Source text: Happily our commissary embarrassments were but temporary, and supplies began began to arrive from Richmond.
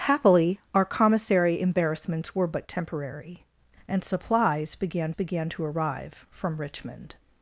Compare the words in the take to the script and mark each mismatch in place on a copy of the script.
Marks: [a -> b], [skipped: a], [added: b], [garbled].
Happily our commissary embarrassments were but temporary, and supplies began began to arrive from Richmond.